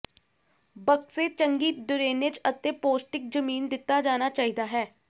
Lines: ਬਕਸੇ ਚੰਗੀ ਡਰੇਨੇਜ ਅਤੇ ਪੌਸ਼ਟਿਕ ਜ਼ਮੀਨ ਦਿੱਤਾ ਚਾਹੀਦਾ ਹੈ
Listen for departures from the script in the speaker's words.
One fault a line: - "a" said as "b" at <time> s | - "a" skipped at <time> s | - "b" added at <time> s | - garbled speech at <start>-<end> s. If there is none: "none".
- "ਜਾਣਾ" added at 4.0 s